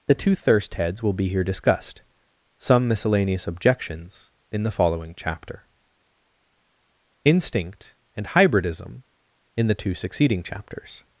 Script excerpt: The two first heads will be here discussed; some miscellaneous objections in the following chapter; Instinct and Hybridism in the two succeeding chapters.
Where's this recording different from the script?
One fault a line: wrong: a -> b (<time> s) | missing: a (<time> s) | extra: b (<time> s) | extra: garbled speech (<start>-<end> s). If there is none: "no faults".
wrong: first -> thirst (0.3 s)